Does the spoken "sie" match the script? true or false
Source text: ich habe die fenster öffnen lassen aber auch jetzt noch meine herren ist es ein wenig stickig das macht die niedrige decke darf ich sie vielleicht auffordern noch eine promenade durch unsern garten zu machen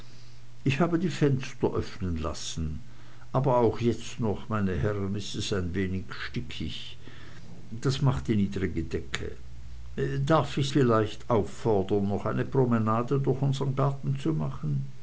false